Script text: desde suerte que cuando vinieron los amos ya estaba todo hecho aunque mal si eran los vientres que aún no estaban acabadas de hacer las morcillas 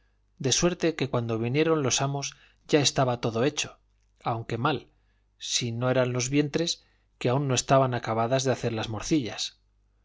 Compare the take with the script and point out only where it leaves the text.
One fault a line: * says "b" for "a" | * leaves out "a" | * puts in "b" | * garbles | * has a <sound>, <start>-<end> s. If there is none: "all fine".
* says "de" for "desde"
* puts in "no"